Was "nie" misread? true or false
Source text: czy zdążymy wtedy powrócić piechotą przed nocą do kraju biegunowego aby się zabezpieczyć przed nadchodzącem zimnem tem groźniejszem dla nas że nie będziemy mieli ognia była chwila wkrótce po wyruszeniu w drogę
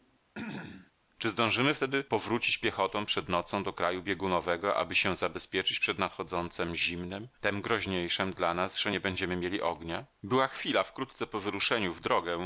false